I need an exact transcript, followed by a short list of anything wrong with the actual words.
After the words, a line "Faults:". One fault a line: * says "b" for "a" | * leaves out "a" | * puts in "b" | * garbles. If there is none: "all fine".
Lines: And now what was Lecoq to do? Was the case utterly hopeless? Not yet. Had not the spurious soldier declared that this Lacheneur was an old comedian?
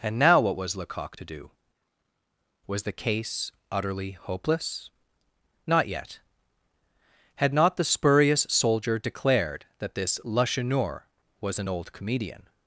And now what was Lecoq to do? Was the case utterly hopeless? Not yet. Had not the spurious soldier declared that this Lacheneur was an old comedian?
Faults:
all fine